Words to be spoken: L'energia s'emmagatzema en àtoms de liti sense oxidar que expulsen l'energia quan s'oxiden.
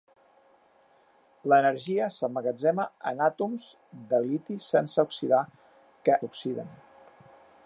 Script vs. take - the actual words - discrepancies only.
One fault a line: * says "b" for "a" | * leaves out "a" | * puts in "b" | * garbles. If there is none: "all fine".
* leaves out "expulsen l'energia quan"